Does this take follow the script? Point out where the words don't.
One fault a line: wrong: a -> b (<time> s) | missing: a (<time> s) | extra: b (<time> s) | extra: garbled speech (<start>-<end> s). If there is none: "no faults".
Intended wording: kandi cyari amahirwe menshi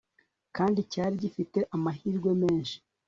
extra: gifite (1.2 s)